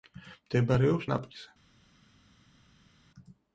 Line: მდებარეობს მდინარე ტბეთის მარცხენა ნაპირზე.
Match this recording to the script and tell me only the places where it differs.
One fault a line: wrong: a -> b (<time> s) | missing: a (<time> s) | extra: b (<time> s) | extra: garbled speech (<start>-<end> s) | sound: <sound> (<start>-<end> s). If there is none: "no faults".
missing: მდინარე ტბეთის მარცხენა (1.1 s)